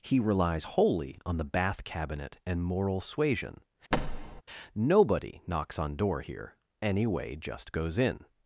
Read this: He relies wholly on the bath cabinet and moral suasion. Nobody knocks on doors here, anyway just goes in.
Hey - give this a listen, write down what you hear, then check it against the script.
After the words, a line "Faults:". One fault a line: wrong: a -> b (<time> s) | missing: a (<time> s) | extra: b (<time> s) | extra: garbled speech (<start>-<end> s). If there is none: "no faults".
He relies wholly on the bath cabinet and moral suasion. Nobody knocks on door here, anyway just goes in.
Faults:
wrong: doors -> door (6.0 s)